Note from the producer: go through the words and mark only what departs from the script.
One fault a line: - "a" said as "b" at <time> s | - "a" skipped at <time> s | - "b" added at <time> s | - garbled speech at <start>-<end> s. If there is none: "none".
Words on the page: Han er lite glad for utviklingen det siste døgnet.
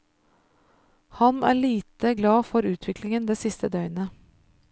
none